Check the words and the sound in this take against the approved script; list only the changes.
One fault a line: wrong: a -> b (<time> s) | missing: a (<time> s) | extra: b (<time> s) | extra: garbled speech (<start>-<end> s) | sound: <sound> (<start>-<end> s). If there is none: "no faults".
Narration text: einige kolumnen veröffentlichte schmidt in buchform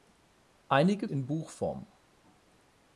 missing: kolumnen veröffentlichte schmidt (1.1 s)